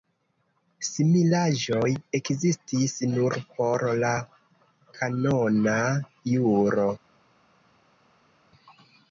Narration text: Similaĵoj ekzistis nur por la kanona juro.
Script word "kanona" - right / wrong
right